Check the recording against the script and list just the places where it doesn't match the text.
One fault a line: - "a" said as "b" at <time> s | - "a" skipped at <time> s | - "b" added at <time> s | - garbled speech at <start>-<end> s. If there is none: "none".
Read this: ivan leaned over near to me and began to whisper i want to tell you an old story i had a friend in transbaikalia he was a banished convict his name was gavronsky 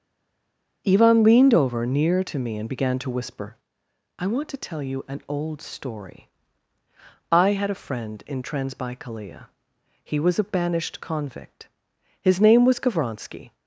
none